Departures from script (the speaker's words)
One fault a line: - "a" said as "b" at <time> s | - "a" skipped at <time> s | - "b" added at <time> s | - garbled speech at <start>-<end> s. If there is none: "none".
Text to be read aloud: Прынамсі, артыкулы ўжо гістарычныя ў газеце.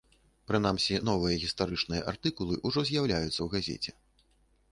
- "новыя гістарычныя" added at 1.1 s
- "гістарычныя" said as "з'яўляюцца" at 2.9 s